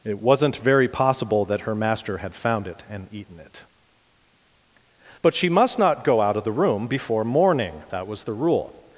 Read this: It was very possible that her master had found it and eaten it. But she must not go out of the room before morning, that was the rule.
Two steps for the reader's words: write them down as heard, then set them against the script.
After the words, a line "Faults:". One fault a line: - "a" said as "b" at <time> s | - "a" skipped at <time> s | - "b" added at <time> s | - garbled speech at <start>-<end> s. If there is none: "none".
It wasn't very possible that her master had found it and eaten it. But she must not go out of the room before morning, that was the rule.
Faults:
- "was" said as "wasn't" at 0.2 s